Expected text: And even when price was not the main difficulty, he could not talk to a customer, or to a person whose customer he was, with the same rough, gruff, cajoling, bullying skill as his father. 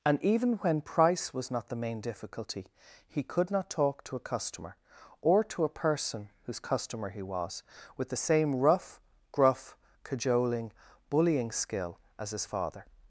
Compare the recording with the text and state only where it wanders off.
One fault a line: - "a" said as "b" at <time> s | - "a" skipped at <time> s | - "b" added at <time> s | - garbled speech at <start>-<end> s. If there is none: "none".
none